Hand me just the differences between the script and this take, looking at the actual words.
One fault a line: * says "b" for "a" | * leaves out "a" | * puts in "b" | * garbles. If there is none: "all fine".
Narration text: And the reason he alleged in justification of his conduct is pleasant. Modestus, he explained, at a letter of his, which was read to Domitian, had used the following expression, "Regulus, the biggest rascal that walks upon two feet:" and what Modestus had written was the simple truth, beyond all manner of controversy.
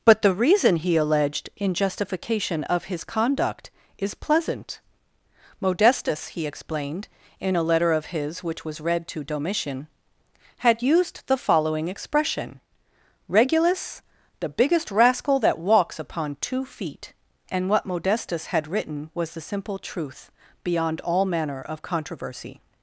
* says "But" for "And"
* says "in" for "at"